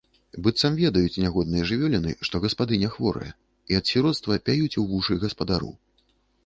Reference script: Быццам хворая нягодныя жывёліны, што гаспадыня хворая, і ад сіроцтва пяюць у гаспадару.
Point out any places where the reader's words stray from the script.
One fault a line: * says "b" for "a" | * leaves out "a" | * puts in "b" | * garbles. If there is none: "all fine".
* says "ведаюць" for "хворая"
* puts in "вушы"